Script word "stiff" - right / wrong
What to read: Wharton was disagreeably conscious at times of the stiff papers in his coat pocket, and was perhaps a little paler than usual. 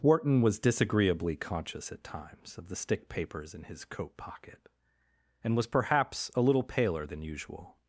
wrong